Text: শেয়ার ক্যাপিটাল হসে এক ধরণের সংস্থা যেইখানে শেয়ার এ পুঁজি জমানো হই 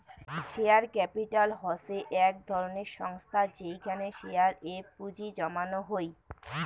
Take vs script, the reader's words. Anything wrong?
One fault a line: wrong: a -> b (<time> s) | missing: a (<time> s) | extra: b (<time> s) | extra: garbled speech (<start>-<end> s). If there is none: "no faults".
no faults